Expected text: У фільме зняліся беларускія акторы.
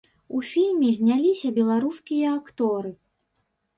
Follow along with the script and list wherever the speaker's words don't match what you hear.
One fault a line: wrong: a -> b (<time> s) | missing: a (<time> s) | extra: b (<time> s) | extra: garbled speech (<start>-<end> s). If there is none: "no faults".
no faults